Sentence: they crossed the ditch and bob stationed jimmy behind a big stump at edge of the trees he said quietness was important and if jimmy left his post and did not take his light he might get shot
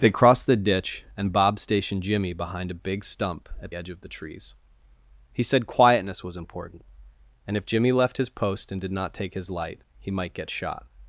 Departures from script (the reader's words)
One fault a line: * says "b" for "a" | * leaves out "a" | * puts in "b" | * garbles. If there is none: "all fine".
all fine